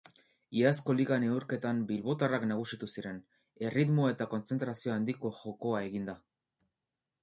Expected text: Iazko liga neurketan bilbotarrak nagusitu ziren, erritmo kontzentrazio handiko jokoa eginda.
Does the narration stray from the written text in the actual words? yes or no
yes